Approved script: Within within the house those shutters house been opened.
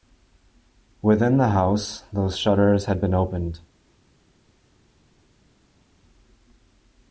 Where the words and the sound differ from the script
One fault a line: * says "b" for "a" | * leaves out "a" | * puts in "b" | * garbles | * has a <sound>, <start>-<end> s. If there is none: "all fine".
* leaves out "within"
* says "had" for "house"